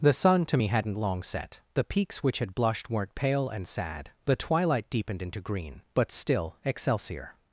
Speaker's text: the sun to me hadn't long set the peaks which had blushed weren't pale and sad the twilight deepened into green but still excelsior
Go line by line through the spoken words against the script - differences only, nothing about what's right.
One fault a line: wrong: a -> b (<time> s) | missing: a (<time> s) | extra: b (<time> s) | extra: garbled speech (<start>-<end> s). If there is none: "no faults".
no faults